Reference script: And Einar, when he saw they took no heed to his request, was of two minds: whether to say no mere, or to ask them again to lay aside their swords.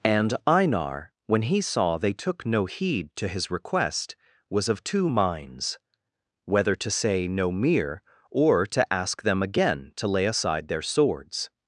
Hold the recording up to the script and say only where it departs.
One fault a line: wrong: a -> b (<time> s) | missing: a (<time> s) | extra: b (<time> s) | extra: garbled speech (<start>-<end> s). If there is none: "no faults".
no faults